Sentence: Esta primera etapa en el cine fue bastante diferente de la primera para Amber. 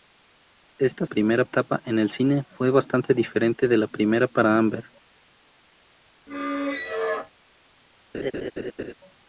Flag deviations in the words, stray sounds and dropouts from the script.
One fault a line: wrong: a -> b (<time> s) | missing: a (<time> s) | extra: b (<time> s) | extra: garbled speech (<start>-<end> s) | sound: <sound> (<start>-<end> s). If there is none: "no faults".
sound: squeak (6.3-7.3 s)
sound: laugh (8.1-8.9 s)